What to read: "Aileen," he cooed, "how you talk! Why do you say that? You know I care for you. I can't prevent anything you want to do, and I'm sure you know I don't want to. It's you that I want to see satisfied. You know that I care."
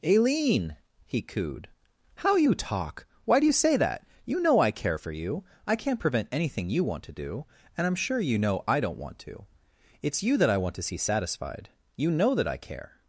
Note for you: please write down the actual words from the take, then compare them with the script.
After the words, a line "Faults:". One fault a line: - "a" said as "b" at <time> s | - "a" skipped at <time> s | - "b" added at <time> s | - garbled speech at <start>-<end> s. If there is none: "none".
"Aileen," he cooed, "how you talk! Why do you say that? You know I care for you. I can't prevent anything you want to do, and I'm sure you know I don't want to. It's you that I want to see satisfied. You know that I care."
Faults:
none